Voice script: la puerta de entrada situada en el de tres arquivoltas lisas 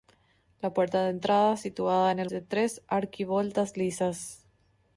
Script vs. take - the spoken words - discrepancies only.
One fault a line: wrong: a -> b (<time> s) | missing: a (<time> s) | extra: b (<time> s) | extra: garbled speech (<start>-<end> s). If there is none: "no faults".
no faults